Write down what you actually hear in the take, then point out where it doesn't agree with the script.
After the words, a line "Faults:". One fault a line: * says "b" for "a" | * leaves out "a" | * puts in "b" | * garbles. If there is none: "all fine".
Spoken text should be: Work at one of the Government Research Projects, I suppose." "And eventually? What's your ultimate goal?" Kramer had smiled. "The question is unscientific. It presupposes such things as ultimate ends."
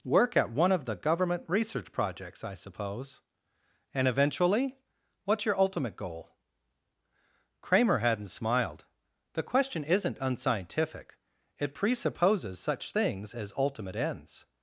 Work at one of the Government Research Projects, I suppose." "And eventually? What's your ultimate goal?" Kramer hadn't smiled. "The question isn't unscientific. It presupposes such things as ultimate ends."
Faults:
* says "hadn't" for "had"
* says "isn't" for "is"